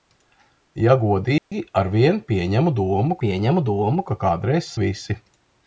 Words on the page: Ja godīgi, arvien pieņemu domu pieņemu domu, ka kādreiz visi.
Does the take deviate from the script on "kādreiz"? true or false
false